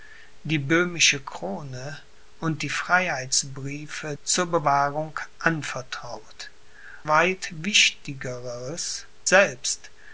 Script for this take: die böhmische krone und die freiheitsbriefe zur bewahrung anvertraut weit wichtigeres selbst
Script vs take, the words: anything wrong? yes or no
no